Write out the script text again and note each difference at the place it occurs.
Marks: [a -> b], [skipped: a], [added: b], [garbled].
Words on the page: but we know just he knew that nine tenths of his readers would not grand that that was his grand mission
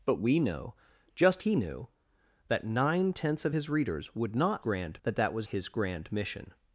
but we know just he knew that nine tenths of his readers would not grand that that was his grand mission